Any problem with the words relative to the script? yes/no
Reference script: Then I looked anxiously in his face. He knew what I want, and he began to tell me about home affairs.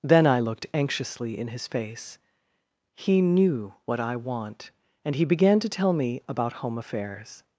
no